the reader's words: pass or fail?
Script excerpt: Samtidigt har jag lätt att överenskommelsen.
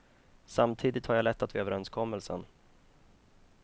pass